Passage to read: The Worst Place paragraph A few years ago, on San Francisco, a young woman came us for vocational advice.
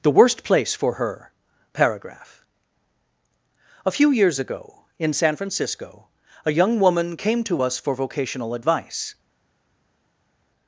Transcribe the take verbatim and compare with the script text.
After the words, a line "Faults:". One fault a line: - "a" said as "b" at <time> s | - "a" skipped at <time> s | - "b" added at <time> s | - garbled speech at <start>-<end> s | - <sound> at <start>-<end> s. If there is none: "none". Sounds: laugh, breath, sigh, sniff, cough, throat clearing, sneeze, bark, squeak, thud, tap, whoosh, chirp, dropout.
The Worst Place for Her paragraph A few years ago, in San Francisco, a young woman came to us for vocational advice.
Faults:
- "for Her" added at 0.7 s
- "on" said as "in" at 5.0 s
- "to" added at 7.4 s